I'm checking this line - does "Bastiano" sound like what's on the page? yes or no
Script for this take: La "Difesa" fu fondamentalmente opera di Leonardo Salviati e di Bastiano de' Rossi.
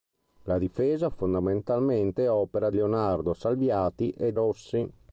no